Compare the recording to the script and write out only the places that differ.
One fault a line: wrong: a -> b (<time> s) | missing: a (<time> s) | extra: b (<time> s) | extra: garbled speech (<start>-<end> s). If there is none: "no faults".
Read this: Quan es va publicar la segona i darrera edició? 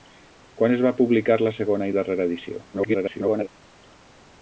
extra: garbled speech (2.7-3.5 s)